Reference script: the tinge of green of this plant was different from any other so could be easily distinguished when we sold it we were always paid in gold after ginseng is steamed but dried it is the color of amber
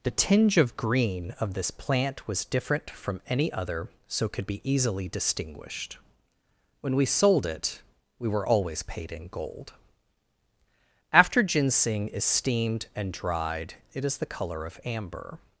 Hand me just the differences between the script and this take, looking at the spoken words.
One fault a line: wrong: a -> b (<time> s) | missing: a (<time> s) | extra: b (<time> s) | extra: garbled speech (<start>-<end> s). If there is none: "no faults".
wrong: but -> and (12.9 s)